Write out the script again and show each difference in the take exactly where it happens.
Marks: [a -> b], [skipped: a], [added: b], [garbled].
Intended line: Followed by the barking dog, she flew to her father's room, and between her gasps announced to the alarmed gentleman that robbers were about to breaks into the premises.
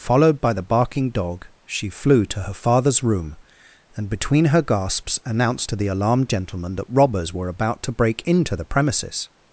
Followed by the barking dog, she flew to her father's room, and between her gasps announced to the alarmed gentleman that robbers were about to [breaks -> break] into the premises.